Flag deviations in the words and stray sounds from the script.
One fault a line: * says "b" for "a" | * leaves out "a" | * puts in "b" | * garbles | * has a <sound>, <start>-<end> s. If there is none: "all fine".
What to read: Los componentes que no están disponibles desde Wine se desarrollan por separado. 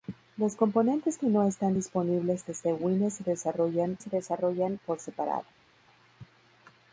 * puts in "se desarrollan"